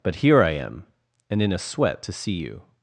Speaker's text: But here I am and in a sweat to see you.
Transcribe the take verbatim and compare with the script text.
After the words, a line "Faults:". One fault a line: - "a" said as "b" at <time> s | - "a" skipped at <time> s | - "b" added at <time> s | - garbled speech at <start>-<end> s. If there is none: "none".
But here I am and in a sweat to see you.
Faults:
none